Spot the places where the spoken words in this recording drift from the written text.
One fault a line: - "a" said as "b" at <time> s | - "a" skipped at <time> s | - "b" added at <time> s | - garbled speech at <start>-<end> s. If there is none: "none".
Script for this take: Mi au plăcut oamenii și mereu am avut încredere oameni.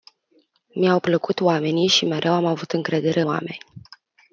none